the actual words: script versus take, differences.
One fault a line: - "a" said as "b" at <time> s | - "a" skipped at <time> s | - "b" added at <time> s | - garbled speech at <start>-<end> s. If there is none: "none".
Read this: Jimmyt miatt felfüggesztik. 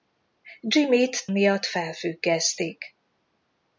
none